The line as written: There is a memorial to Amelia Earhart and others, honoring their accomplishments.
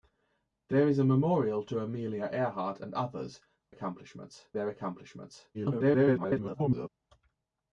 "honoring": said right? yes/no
no